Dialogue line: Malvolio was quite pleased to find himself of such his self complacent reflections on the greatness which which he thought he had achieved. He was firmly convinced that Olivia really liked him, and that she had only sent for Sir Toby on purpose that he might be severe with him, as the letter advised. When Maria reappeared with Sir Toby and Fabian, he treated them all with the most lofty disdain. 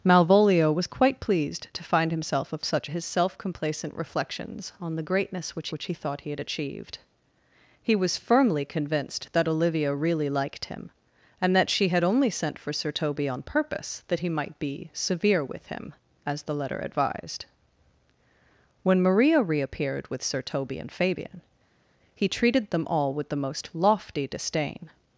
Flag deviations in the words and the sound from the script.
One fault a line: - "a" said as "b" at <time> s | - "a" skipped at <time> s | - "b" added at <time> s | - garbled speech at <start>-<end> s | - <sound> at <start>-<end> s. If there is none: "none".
none